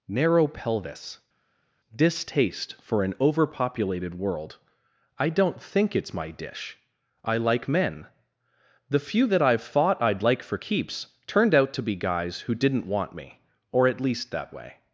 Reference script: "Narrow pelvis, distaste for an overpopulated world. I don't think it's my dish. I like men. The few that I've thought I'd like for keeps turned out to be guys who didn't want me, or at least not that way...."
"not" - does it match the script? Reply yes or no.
no